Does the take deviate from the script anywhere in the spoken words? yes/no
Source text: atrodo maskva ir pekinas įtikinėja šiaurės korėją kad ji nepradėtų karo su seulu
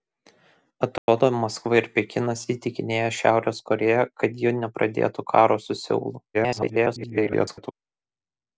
yes